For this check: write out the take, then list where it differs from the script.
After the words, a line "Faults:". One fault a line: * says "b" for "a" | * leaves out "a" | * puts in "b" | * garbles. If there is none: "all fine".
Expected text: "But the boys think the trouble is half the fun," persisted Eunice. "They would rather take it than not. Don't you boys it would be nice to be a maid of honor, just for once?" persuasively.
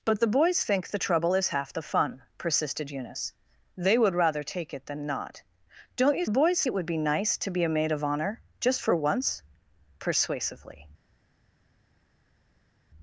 "But the boys think the trouble is half the fun," persisted Eunice. "They would rather take it than not. Don't you boys it would be nice to be a maid of honor, just for once?" persuasively.
Faults:
all fine